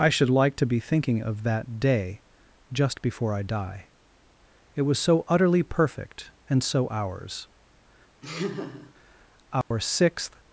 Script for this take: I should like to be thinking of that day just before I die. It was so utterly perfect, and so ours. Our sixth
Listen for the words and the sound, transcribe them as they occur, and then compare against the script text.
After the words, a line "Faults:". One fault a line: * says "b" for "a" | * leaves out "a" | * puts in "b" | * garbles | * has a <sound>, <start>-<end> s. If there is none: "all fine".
I should like to be thinking of that day just before I die. It was so utterly perfect, and so ours. Our sixth
Faults:
* has a laugh, 8.2-8.9 s
* has a dropout, 9.6-9.7 s